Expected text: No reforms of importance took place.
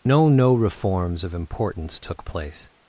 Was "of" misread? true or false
false